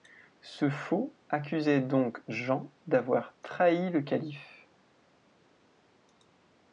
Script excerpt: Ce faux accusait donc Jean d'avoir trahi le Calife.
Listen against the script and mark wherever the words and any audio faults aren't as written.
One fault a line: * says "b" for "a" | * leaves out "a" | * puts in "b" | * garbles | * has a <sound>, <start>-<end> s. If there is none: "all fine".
all fine